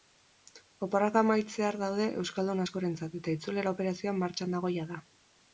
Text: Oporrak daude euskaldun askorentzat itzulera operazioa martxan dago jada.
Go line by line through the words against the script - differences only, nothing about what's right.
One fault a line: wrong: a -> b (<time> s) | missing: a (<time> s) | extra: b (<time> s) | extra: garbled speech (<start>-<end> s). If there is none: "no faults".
extra: amaitzear (1.2 s)
extra: eta (3.2 s)